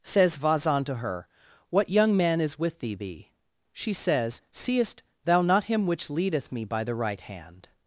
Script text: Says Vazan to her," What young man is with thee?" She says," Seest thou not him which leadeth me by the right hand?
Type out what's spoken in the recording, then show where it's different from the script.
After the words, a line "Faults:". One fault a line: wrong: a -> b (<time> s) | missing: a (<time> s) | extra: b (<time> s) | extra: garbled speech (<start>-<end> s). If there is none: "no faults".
Says Vazan to her," What young man is with thee thee?" She says," Seest thou not him which leadeth me by the right hand?
Faults:
extra: thee (2.9 s)